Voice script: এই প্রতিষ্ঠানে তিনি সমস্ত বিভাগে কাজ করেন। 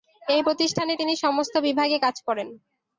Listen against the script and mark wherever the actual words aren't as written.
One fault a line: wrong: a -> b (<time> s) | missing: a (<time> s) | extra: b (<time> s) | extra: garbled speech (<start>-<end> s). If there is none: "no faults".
no faults